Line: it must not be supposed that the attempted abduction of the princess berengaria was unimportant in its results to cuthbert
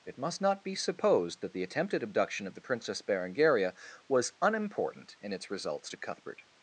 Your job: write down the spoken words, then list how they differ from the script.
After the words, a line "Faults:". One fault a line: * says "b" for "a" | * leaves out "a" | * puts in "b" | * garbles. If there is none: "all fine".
it must not be supposed that the attempted abduction of the princess berengaria was unimportant in its results to cuthbert
Faults:
all fine